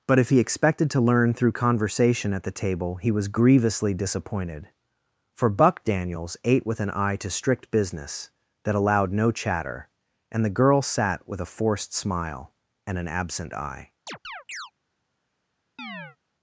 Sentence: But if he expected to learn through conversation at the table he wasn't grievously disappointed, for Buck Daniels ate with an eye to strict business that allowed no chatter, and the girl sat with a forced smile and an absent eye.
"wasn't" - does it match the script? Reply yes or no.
no